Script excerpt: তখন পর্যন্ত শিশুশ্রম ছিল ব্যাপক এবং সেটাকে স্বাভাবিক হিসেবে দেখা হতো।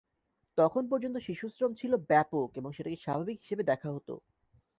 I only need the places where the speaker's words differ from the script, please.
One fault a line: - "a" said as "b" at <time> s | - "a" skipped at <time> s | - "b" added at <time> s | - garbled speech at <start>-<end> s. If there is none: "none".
none